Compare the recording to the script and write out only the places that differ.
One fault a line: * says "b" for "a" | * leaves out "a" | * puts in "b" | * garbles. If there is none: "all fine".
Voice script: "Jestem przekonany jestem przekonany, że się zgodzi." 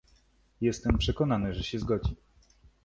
* leaves out "jestem przekonany"